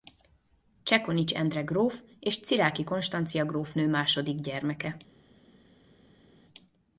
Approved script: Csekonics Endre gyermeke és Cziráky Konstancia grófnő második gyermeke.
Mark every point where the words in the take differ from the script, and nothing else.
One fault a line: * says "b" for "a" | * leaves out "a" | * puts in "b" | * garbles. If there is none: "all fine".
* says "gróf" for "gyermeke"